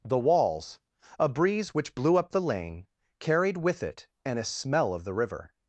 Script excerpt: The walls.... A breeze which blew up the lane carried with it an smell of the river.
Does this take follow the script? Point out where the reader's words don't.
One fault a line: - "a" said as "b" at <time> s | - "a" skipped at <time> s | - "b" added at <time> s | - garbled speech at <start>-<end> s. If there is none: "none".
none